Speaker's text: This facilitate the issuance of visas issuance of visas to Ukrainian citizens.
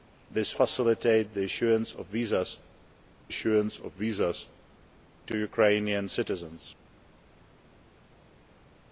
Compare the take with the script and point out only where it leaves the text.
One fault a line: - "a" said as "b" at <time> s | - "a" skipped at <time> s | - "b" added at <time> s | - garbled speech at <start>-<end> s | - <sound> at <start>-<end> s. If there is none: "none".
none